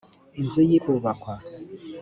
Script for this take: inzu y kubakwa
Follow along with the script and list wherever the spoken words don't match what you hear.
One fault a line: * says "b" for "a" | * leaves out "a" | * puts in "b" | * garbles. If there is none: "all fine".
all fine